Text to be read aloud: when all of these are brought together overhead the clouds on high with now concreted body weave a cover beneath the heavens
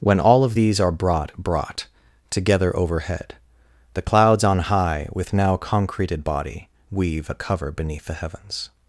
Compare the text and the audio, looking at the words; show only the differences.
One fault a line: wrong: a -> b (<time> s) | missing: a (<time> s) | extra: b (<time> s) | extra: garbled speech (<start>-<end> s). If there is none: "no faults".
extra: brought (1.4 s)